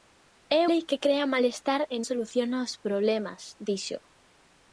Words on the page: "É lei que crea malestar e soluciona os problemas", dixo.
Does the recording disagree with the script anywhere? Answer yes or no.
no